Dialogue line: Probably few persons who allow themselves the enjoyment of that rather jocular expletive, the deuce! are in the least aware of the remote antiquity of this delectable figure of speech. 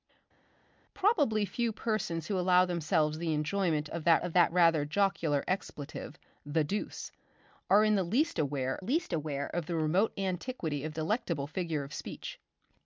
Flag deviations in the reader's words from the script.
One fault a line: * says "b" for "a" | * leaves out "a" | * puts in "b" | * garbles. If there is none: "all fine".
* puts in "of that"
* puts in "least aware"
* leaves out "this"